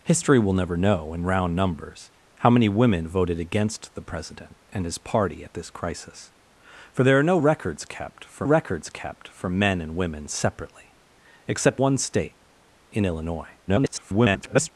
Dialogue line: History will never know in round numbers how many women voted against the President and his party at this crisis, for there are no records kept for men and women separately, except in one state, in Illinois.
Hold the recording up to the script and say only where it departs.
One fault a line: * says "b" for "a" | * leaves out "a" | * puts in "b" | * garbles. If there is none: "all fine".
* puts in "records kept for"
* leaves out "in"
* garbles